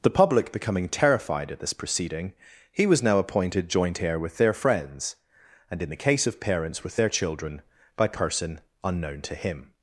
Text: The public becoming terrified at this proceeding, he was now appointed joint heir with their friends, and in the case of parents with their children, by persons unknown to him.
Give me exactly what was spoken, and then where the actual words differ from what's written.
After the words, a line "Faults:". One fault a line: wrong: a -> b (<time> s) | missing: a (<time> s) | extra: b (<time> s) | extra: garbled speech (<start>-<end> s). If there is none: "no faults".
The public becoming terrified at this proceeding, he was now appointed joint heir with their friends, and in the case of parents with their children, by person unknown to him.
Faults:
wrong: persons -> person (8.1 s)